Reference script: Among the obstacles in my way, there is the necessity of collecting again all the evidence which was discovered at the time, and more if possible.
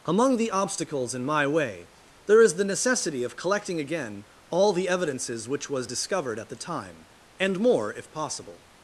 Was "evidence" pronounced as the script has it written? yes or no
no